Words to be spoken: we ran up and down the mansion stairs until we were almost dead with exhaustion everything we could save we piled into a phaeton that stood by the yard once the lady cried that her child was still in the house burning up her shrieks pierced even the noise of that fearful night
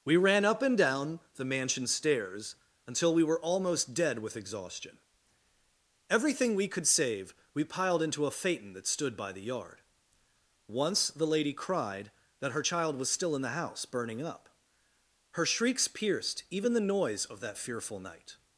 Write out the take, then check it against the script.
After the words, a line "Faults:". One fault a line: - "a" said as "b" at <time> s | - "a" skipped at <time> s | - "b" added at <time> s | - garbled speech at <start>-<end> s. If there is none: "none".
we ran up and down the mansion stairs until we were almost dead with exhaustion everything we could save we piled into a phaeton that stood by the yard once the lady cried that her child was still in the house burning up her shrieks pierced even the noise of that fearful night
Faults:
none